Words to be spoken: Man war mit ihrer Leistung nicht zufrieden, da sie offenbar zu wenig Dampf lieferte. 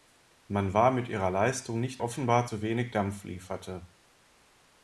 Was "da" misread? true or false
true